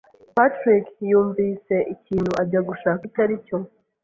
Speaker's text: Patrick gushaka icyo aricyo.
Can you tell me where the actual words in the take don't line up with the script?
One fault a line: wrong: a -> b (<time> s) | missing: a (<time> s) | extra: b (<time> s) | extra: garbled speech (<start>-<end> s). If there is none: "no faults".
extra: yumvise ikintu ajya (1.1 s)